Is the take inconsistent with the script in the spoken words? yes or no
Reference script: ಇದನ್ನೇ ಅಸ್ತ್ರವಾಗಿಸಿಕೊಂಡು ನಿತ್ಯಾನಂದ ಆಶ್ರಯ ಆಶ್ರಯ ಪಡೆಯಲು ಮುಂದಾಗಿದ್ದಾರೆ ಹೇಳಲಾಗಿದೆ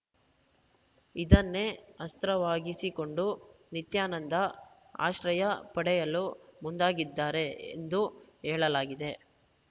yes